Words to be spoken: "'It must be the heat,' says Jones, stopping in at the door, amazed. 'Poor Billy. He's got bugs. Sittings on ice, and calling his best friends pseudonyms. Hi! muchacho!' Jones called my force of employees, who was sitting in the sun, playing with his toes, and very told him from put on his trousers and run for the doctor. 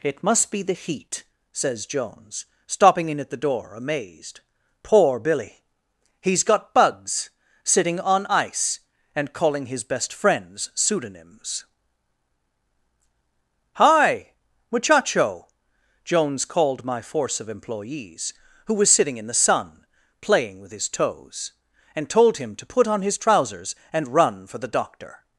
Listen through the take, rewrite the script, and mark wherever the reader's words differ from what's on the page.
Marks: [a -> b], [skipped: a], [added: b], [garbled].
"'It must be the heat,' says Jones, stopping in at the door, amazed. 'Poor Billy. He's got bugs. [Sittings -> Sitting] on ice, and calling his best friends pseudonyms. Hi! muchacho!' Jones called my force of employees, who was sitting in the sun, playing with his toes, and [skipped: very] told him [from -> to] put on his trousers and run for the doctor.